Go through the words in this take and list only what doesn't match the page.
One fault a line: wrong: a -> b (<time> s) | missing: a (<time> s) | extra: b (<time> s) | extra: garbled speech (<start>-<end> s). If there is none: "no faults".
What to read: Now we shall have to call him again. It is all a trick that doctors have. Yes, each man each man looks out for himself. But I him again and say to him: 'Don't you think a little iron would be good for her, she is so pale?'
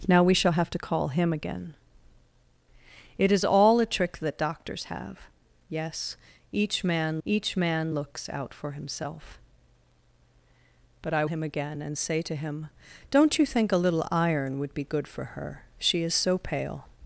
no faults